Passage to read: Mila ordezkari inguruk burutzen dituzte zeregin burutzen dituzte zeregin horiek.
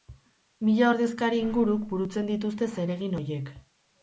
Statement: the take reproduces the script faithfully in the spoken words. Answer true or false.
false